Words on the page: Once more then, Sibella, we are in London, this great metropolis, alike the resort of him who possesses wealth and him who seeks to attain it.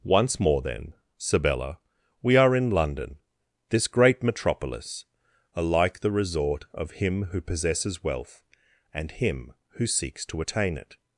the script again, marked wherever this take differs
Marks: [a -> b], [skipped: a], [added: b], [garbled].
Once more then, Sibella, we are in London, this great metropolis, alike the resort of him who possesses wealth and him who seeks to attain it.